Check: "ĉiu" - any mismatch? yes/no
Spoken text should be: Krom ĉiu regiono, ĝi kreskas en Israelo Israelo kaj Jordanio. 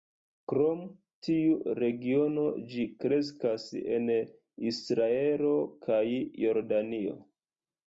yes